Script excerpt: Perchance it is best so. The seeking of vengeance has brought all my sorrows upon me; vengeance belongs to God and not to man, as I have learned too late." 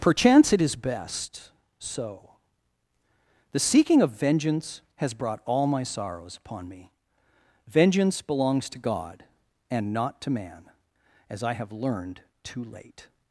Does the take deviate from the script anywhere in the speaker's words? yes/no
no